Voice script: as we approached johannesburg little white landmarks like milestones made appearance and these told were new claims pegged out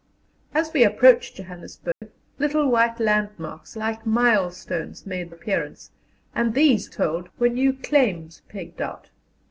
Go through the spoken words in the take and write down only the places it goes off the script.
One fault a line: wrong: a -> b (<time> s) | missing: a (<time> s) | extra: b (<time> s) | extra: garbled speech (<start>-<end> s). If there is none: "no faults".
no faults